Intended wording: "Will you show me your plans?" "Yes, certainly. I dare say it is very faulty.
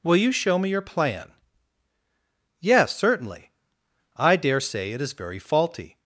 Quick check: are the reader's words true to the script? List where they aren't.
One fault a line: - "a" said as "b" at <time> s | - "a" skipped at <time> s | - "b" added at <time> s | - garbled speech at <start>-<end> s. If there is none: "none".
- "plans" said as "plan" at 0.8 s